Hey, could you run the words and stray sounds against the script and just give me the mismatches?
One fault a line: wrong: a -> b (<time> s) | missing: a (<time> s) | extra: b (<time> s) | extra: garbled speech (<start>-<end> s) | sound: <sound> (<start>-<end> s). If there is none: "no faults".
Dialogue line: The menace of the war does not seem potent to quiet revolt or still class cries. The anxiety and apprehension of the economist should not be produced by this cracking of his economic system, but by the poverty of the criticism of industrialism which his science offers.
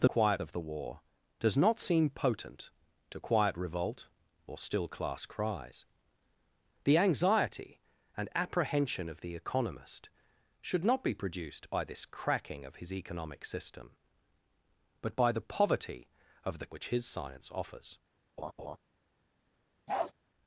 wrong: menace -> quiet (0.0 s)
missing: criticism of industrialism (16.7 s)
sound: laugh (18.4-18.8 s)
sound: bark (19.9-20.1 s)